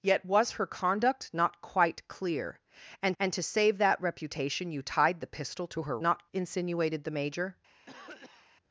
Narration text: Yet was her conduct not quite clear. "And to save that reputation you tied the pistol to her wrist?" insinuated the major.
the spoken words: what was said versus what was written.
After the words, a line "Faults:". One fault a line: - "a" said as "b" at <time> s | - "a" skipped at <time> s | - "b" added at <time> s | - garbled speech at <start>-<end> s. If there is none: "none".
Yet was her conduct not quite clear. "And and to save that reputation you tied the pistol to her not?" insinuated the major.
Faults:
- "and" added at 3.2 s
- "wrist" said as "not" at 6.0 s